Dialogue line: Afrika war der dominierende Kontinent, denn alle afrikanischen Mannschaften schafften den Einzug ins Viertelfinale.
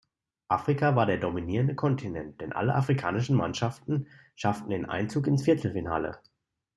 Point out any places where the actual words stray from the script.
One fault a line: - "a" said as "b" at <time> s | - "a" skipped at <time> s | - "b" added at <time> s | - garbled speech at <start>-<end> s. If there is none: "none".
none